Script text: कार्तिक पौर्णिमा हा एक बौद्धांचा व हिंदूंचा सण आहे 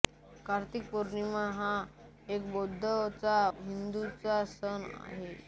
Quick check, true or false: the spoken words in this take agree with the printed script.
false